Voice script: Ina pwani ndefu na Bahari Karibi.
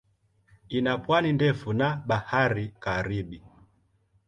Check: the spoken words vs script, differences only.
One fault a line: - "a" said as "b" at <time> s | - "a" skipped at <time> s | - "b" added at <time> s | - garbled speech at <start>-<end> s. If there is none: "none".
none